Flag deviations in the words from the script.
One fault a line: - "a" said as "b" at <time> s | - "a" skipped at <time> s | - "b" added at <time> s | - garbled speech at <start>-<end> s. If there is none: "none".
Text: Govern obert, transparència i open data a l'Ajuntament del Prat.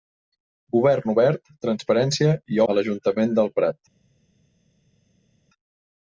- "open data" skipped at 2.6 s